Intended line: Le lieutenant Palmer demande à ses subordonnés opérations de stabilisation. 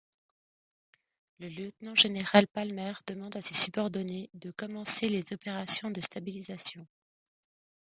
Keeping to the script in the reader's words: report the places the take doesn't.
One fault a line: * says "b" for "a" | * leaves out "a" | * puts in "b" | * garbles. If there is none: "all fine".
* puts in "général"
* puts in "de commencer les"